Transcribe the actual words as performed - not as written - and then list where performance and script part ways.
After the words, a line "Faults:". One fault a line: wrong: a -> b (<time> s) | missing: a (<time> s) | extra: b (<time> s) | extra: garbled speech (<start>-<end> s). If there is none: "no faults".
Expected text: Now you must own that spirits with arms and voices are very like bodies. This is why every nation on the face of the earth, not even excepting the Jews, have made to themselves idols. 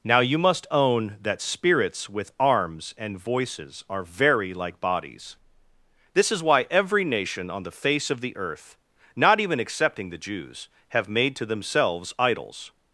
Now you must own that spirits with arms and voices are very like bodies. This is why every nation on the face of the earth, not even excepting the Jews, have made to themselves idols.
Faults:
no faults